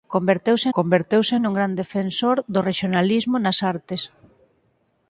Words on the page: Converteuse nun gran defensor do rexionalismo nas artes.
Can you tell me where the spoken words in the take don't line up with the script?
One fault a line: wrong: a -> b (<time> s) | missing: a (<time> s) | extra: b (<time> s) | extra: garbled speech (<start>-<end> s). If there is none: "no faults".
extra: converteuse (0.8 s)